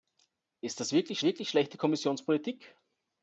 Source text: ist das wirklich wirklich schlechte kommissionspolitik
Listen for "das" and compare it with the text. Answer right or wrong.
right